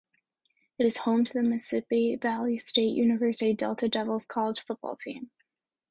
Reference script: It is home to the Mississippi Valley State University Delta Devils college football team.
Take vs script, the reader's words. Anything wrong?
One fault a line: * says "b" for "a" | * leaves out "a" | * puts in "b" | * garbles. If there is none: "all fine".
all fine